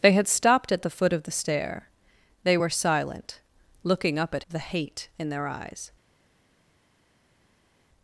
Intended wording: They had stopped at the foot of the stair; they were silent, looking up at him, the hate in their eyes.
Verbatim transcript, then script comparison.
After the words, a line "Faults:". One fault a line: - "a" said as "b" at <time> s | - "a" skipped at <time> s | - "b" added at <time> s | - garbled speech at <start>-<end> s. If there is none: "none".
They had stopped at the foot of the stair; they were silent, looking up at the hate in their eyes.
Faults:
- "him" skipped at 4.4 s